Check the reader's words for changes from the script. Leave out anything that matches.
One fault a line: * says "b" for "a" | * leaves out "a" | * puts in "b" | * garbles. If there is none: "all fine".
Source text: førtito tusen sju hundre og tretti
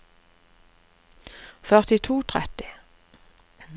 * leaves out "tusen sju hundre"